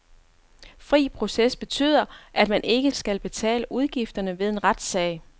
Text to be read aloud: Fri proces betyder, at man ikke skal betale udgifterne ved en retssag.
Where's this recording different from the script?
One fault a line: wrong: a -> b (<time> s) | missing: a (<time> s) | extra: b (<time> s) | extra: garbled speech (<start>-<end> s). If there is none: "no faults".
no faults